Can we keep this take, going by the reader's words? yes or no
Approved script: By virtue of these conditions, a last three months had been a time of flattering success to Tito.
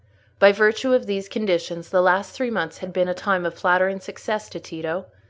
no